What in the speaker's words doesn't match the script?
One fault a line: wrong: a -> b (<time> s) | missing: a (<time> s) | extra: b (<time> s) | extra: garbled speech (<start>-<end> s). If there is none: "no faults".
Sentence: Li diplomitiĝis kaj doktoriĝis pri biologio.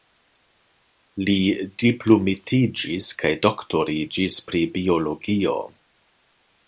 no faults